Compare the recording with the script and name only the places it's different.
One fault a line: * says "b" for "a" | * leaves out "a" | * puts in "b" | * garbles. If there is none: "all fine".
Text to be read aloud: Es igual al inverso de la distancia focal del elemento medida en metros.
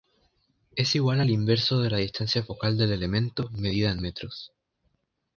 all fine